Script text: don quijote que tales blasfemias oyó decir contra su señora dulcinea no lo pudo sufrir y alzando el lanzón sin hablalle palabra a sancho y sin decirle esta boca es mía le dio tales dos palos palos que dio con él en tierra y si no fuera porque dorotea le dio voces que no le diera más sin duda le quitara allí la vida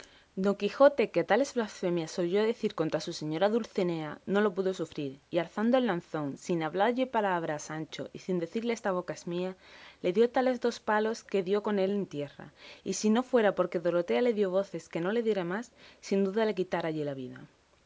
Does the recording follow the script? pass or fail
fail